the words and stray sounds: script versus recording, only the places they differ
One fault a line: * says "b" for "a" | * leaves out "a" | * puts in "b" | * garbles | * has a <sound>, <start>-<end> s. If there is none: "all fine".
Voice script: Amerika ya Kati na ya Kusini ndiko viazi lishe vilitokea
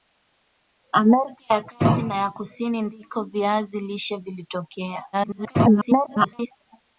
* garbles